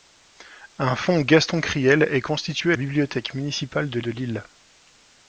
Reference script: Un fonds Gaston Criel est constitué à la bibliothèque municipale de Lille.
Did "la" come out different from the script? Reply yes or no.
yes